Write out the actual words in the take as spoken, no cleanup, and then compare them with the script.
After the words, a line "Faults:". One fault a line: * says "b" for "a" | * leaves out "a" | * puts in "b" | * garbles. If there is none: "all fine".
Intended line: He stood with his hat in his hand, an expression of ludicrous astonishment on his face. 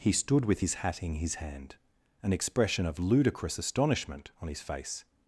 He stood with his hat in his hand, an expression of ludicrous astonishment on his face.
Faults:
all fine